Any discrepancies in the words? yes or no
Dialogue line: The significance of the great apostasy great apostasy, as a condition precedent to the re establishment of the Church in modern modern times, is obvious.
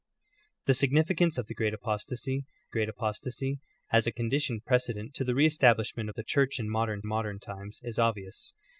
no